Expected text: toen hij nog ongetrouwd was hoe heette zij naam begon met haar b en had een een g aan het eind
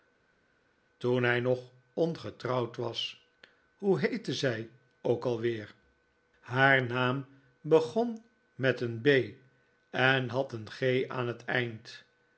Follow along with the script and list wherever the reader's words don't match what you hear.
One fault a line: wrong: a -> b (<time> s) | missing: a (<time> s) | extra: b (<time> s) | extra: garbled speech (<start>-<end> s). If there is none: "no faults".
extra: ook alweer haar (5.0 s)
wrong: haar -> een (8.8 s)
missing: een (10.7 s)